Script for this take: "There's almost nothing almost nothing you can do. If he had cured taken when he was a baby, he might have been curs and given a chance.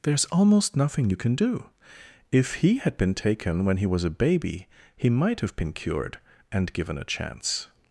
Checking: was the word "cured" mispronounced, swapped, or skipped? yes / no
yes